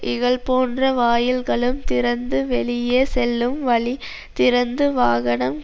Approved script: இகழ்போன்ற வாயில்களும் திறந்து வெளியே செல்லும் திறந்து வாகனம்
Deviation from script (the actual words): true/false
true